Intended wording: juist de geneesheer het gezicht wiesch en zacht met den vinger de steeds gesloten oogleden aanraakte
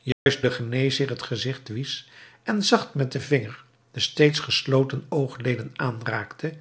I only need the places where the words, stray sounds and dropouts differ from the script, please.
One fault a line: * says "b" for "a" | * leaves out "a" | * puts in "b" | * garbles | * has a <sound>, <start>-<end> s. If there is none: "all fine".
* has a dropout, 0.1-0.3 s